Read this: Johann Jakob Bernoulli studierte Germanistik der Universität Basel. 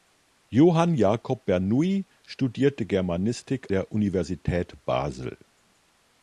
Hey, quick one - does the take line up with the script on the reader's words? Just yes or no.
yes